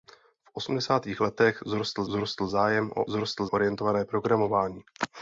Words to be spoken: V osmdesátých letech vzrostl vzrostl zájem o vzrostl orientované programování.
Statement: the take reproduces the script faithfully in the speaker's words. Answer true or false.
true